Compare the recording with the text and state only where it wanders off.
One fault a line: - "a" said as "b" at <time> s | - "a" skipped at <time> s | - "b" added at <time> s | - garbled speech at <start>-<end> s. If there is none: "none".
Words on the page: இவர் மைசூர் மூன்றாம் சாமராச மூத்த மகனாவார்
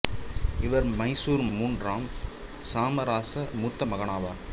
none